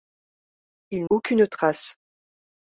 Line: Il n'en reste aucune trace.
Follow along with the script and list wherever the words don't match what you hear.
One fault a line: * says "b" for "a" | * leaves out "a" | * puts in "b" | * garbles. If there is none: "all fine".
* leaves out "n'en reste"